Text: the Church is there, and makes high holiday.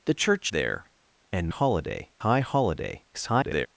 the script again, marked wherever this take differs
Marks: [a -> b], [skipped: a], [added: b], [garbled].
the Church [skipped: is] there, and [makes -> holiday] high holiday. [garbled]